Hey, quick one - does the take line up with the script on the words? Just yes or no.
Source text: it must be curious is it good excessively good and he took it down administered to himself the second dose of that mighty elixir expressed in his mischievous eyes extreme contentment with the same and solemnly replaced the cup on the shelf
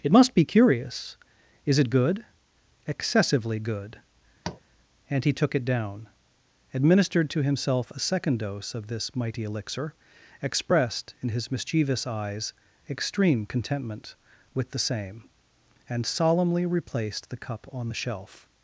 no